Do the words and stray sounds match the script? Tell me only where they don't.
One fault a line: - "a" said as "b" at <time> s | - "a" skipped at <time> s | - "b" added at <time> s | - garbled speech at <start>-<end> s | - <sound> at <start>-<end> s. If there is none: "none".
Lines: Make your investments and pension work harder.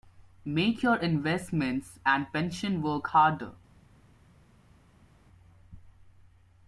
none